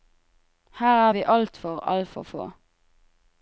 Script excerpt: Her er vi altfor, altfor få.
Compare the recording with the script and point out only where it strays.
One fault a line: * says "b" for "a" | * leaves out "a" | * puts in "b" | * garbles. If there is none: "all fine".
all fine